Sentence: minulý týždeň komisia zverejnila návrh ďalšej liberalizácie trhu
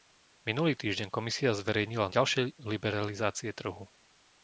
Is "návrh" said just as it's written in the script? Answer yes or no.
no